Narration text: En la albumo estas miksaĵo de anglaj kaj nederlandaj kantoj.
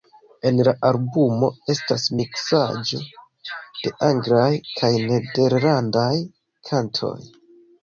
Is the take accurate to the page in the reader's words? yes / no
yes